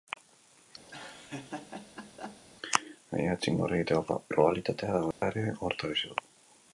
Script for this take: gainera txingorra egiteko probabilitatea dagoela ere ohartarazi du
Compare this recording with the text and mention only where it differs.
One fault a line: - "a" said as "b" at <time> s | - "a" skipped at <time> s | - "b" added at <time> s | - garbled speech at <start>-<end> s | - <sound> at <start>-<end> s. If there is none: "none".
- laugh at 0.9-2.4 s
- dropout at 5.1-5.2 s